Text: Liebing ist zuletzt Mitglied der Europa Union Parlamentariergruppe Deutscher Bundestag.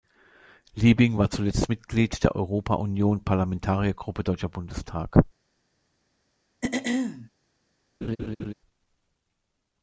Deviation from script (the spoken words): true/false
true